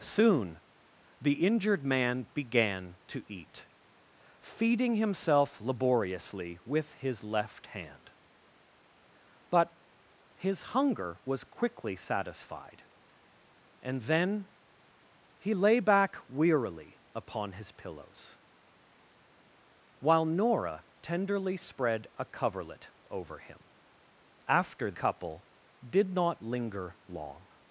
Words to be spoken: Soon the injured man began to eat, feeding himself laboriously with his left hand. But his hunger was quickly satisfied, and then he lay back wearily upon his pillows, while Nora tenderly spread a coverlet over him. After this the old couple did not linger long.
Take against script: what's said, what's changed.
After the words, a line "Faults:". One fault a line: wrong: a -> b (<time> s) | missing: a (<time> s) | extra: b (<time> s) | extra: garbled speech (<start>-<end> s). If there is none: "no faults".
Soon the injured man began to eat, feeding himself laboriously with his left hand. But his hunger was quickly satisfied, and then he lay back wearily upon his pillows, while Nora tenderly spread a coverlet over him. After couple did not linger long.
Faults:
missing: this the old (24.9 s)